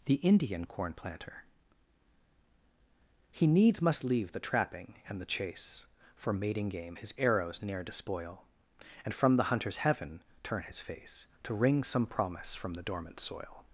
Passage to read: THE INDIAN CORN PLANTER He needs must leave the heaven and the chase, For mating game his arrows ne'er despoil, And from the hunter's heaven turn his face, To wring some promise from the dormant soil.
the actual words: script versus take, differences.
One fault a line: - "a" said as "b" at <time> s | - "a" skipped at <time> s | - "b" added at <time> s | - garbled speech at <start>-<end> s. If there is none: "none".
- "heaven" said as "trapping" at 4.4 s